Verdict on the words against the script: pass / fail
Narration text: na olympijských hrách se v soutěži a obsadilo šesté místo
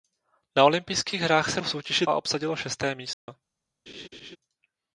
pass